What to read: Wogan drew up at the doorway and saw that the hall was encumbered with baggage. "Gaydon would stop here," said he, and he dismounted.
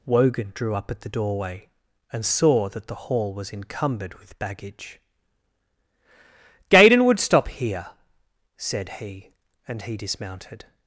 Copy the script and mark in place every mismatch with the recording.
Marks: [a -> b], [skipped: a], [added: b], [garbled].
Wogan drew up at the doorway and saw that the hall was encumbered with baggage. "Gaydon would stop here," said he, and he dismounted.